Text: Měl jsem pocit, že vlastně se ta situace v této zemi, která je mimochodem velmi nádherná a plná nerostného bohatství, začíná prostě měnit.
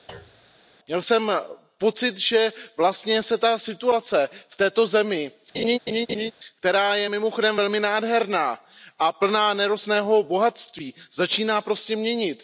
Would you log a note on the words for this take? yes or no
no